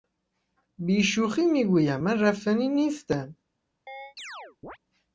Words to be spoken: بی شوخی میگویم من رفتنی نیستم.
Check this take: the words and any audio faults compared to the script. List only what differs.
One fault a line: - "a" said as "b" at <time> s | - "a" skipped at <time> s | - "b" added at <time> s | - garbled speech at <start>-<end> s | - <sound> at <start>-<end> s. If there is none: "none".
- chirp at 3.9-4.8 s